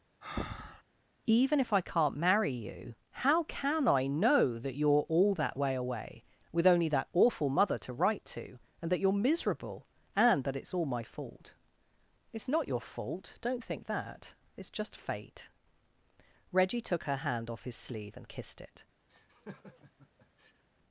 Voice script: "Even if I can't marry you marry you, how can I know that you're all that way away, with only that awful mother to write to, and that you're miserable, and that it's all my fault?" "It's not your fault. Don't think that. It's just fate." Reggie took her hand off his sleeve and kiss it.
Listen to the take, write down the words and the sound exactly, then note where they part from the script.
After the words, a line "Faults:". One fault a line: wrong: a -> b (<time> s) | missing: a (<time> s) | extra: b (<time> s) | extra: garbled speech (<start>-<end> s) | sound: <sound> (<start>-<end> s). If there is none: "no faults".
"Even if I can't marry you, how can I know that you're all that way away, with only that awful mother to write to, and that you're miserable, and that it's all my fault?" "It's not your fault. Don't think that. It's just fate." Reggie took her hand off his sleeve and kissed it.
Faults:
sound: breath (0.2-0.8 s)
missing: marry you (2.9 s)
wrong: kiss -> kissed (18.3 s)
sound: laugh (19.1-20.6 s)